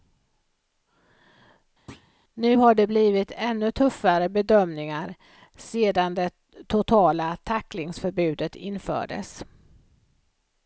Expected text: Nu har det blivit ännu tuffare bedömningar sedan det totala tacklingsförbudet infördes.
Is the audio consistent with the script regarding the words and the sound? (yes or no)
no